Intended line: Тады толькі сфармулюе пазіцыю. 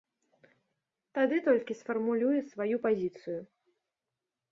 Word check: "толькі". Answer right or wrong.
right